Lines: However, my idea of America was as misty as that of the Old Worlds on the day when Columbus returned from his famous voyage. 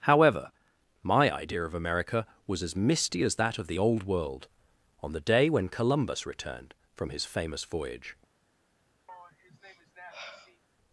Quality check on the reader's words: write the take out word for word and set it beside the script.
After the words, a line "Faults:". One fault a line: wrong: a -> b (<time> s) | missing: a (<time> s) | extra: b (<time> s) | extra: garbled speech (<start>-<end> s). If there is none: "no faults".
However, my idea of America was as misty as that of the Old World on the day when Columbus returned from his famous voyage.
Faults:
wrong: Worlds -> World (4.0 s)